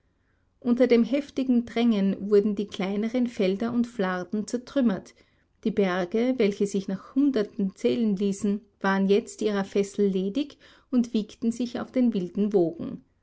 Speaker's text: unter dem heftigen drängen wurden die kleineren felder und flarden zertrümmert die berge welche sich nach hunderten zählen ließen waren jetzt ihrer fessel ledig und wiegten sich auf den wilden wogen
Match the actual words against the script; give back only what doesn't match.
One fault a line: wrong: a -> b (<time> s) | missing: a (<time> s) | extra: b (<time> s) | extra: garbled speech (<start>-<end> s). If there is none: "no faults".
no faults